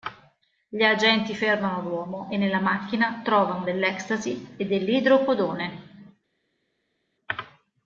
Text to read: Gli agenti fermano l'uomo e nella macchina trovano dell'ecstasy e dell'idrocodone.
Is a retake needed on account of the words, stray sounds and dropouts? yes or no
no